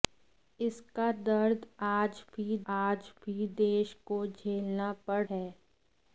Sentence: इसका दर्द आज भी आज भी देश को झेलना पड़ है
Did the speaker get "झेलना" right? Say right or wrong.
right